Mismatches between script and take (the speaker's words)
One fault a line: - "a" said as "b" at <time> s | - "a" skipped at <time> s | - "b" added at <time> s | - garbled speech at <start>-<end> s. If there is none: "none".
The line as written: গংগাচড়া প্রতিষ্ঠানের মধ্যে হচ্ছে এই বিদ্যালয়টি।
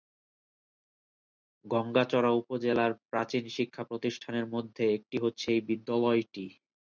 - "উপজেলার প্রাচীন শিক্ষা" added at 2.4 s
- "একটি" added at 5.0 s